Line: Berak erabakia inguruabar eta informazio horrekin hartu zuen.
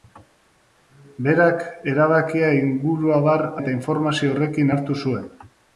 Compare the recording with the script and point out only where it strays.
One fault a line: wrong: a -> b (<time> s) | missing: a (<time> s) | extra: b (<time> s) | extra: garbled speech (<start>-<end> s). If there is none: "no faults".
no faults